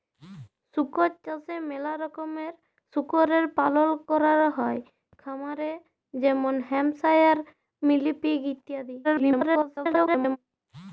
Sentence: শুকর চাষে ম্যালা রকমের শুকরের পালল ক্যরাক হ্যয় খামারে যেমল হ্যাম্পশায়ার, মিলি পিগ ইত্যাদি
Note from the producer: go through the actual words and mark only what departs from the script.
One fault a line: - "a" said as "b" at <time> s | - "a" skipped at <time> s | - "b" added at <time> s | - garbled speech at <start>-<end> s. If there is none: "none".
- garbled speech at 9.0-10.4 s